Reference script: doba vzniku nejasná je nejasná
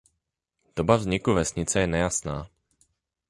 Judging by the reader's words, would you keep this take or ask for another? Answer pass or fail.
fail